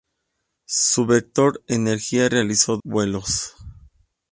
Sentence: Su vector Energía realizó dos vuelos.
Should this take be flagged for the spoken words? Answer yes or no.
yes